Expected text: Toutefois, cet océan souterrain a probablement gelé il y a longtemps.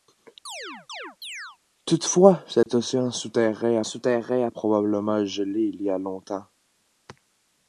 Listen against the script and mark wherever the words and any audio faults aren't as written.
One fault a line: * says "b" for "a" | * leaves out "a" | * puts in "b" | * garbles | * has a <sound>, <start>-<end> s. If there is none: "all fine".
* has a chirp, 0.5-1.6 s
* has a dropout, 2.6-2.7 s
* puts in "souterrain"